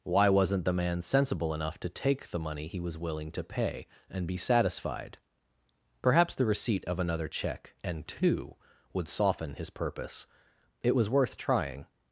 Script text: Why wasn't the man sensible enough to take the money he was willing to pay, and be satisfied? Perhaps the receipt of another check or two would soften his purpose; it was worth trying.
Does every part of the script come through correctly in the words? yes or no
no